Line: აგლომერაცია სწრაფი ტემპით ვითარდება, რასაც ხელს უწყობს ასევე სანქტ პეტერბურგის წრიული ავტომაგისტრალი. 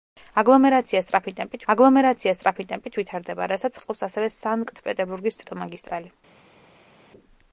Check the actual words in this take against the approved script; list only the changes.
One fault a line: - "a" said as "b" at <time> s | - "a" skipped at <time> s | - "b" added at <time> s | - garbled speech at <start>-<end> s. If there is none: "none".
- "აგლომერაცია სწრაფი ტემპით" added at 1.7 s
- "ხელს" skipped at 3.8 s
- "წრიული" skipped at 5.4 s